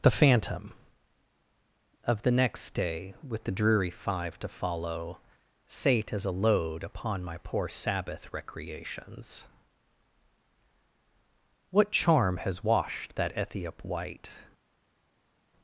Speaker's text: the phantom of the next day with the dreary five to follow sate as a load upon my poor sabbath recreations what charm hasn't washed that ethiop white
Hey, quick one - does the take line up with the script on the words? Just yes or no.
no